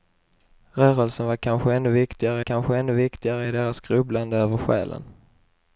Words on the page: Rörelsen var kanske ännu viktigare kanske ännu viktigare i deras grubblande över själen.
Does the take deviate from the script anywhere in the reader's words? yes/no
no